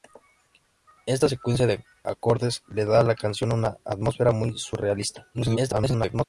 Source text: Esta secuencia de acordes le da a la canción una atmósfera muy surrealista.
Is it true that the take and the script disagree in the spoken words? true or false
true